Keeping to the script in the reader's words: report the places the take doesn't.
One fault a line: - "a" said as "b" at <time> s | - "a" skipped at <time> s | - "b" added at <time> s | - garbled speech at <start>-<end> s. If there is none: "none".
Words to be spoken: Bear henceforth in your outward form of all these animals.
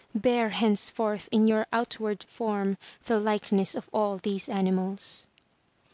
- "the likeness" added at 3.0 s